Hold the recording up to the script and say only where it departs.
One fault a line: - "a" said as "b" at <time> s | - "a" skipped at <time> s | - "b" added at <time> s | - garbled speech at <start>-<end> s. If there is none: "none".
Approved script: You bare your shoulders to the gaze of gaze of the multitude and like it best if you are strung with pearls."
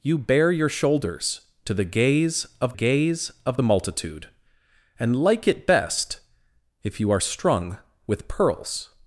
none